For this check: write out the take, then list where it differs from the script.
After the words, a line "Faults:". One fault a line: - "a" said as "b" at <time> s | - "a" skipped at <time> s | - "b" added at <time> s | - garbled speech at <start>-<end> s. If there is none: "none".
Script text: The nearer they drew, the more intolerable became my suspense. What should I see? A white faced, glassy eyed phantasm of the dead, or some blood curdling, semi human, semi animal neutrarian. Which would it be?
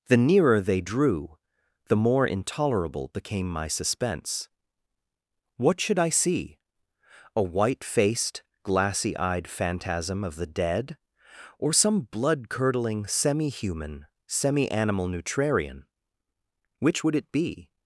The nearer they drew, the more intolerable became my suspense. What should I see? A white faced, glassy eyed phantasm of the dead, or some blood curdling, semi human, semi animal neutrarian. Which would it be?
Faults:
none